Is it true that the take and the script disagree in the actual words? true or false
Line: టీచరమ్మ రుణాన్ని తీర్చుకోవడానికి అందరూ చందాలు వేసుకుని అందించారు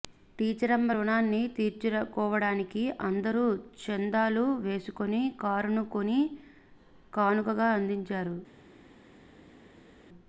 true